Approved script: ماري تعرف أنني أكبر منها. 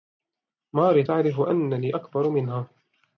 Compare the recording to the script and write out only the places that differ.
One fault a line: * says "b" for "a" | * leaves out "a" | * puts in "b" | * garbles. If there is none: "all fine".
all fine